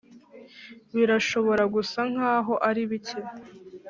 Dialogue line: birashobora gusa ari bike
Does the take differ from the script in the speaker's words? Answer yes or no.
yes